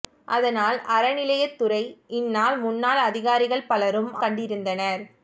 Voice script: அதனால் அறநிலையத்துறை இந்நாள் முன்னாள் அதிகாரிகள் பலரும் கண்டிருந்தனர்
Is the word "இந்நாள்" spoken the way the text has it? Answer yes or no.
yes